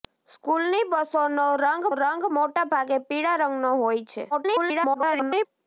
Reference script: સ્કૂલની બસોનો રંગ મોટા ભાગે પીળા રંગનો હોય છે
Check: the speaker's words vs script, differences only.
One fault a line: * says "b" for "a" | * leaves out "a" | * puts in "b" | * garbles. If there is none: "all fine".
* puts in "રંગ"
* garbles